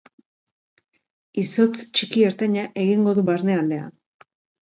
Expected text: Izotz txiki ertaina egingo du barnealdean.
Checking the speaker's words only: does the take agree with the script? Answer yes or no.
yes